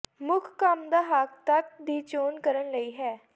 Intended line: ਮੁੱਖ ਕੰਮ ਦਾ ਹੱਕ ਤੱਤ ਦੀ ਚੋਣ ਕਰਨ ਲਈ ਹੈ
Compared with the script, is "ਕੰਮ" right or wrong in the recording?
right